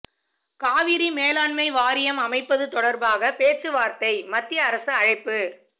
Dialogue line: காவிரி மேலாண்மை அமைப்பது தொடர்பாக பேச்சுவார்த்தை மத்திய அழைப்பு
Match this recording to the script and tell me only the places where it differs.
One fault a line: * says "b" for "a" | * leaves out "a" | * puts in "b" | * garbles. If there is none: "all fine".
* puts in "வாரியம்"
* puts in "அரசு"